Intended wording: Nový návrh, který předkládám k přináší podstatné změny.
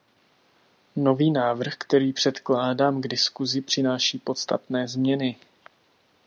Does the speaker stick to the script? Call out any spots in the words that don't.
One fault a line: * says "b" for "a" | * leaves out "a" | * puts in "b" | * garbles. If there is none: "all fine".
* puts in "diskusi"